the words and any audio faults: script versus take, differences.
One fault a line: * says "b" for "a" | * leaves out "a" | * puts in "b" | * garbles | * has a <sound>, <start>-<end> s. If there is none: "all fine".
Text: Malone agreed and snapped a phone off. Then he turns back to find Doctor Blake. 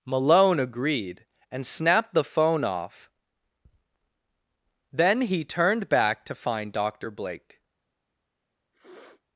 * says "the" for "a"
* says "turned" for "turns"
* has a sniff, 8.7-9.2 s